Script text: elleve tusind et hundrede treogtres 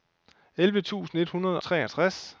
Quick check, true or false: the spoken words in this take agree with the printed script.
true